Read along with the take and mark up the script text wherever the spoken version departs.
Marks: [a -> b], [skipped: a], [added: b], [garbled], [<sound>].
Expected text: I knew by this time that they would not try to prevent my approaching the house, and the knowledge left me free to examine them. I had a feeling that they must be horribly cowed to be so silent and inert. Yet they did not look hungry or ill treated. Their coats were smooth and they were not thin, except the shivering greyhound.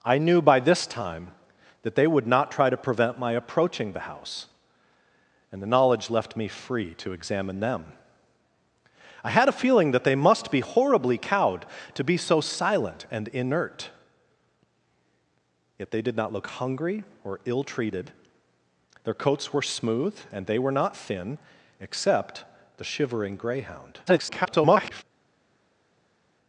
I knew by this time that they would not try to prevent my approaching the house, and the knowledge left me free to examine them. I had a feeling that they must be horribly cowed to be so silent and inert. Yet they did not look hungry or ill treated. Their coats were smooth and they were not thin, except the shivering greyhound. [garbled]